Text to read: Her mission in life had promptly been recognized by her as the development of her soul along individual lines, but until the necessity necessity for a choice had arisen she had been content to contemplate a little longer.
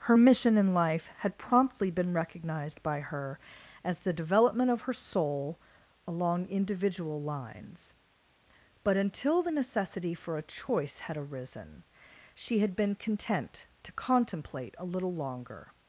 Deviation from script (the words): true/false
true